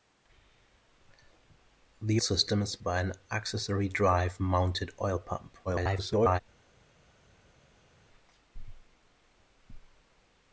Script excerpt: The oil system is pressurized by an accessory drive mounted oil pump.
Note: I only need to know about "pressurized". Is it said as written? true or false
false